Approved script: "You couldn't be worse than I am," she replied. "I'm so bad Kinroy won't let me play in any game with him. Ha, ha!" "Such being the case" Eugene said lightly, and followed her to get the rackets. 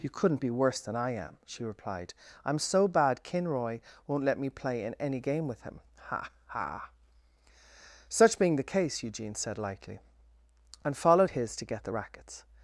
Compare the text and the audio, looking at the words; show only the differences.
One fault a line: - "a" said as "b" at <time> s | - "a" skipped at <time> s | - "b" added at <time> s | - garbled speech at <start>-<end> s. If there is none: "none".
- "her" said as "his" at 11.3 s